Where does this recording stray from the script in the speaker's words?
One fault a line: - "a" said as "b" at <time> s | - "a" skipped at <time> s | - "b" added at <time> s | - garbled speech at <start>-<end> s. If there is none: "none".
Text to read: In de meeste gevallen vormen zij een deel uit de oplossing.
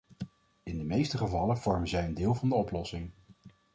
- "uit" said as "van" at 2.3 s